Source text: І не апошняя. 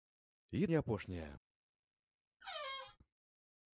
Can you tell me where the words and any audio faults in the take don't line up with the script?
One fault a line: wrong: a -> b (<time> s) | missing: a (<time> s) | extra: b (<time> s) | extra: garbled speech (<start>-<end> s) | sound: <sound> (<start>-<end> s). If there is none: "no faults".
sound: squeak (2.4-3.0 s)